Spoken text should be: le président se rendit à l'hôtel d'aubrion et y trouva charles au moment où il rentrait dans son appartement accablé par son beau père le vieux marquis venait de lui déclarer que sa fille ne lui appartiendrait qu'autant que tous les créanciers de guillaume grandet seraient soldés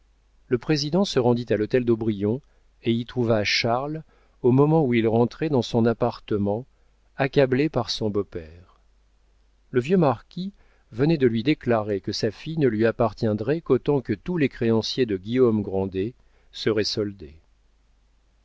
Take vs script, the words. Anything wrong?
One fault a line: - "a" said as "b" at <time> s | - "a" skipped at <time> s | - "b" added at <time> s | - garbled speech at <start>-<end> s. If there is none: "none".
none